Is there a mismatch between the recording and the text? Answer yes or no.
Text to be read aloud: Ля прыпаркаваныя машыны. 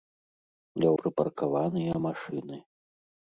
no